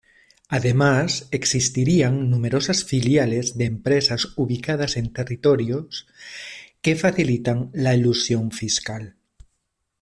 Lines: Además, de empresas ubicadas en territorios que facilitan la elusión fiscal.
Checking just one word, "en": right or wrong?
right